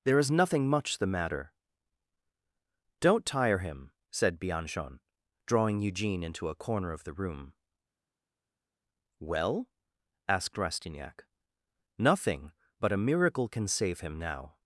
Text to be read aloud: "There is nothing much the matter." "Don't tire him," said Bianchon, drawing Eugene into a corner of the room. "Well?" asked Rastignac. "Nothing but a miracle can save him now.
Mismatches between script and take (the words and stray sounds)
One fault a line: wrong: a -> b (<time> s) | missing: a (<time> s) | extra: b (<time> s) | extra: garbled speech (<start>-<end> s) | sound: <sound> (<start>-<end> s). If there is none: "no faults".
no faults